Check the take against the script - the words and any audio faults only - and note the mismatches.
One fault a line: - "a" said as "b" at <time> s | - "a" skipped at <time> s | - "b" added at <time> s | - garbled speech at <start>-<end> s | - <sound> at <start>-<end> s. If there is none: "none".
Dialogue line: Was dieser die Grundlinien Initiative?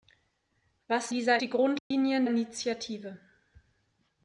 - dropout at 1.8-1.9 s